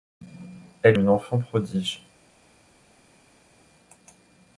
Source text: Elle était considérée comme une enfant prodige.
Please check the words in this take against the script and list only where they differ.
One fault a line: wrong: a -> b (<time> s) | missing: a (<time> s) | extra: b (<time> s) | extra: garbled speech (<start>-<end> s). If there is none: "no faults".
missing: était considérée comme (1.0 s)